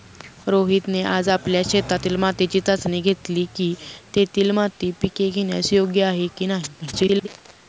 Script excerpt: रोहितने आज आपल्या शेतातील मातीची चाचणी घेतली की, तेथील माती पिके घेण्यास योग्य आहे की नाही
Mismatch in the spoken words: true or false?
true